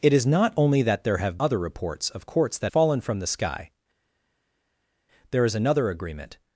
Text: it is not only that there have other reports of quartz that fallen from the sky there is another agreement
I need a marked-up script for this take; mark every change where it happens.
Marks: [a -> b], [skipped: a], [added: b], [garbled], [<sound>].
it is not only that there have other reports of quartz that fallen from the sky there is another agreement